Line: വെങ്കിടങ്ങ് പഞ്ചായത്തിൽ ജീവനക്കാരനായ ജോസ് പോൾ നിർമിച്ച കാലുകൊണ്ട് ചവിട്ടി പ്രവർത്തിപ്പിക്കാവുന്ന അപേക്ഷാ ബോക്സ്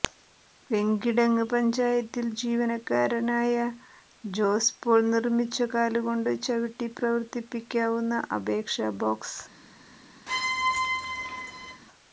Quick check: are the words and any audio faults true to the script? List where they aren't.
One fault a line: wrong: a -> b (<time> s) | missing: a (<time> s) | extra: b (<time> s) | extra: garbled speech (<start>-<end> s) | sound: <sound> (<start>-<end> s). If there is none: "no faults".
sound: squeak (10.3-11.8 s)